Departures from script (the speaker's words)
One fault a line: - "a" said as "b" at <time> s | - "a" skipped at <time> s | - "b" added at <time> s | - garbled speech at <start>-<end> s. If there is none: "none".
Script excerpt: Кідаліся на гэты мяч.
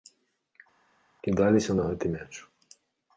none